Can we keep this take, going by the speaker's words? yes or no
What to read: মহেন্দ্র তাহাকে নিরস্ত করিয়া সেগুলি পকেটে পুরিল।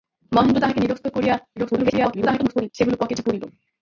no